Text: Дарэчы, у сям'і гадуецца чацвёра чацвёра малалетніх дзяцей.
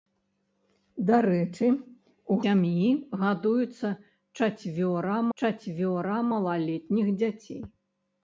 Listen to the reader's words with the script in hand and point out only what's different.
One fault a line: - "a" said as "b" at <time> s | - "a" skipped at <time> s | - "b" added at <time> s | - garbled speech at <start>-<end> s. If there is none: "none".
none